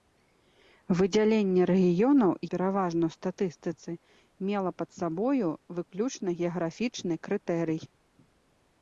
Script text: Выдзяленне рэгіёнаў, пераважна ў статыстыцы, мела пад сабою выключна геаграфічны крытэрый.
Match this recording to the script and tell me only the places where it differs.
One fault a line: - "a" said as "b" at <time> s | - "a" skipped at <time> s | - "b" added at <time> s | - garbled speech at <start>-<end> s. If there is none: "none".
none